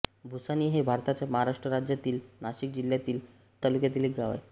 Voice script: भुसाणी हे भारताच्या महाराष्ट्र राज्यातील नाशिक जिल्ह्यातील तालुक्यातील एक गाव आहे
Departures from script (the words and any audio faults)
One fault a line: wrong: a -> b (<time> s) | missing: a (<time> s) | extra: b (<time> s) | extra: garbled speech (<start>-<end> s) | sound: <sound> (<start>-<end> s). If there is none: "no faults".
no faults